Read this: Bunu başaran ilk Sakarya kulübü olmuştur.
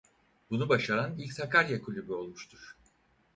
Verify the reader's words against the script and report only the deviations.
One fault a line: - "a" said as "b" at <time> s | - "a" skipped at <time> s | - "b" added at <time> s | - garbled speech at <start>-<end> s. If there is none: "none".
none